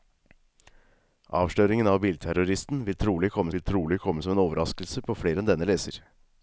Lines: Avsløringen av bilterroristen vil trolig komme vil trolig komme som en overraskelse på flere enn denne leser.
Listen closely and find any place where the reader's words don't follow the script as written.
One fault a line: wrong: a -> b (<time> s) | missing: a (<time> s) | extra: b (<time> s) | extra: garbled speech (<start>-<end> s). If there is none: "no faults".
no faults